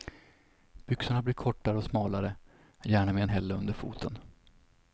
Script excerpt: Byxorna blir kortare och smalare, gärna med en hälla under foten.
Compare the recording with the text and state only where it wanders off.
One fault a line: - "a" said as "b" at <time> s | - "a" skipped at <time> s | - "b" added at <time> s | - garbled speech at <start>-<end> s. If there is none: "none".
none